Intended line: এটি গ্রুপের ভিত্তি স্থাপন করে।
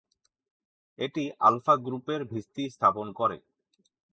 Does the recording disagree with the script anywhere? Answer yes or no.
yes